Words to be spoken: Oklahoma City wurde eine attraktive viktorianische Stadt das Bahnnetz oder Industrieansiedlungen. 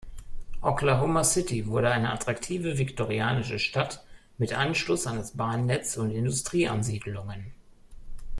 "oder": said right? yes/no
no